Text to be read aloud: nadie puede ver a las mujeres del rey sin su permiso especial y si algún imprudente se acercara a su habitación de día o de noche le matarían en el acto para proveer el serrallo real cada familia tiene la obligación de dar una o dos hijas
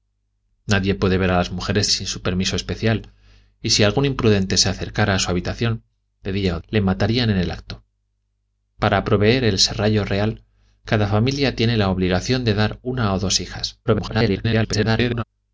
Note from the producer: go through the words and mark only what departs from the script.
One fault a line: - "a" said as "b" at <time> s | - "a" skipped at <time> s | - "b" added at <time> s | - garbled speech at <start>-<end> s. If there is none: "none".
- "del rey" skipped at 1.9 s
- "de noche" skipped at 6.6 s
- garbled speech at 13.9-15.2 s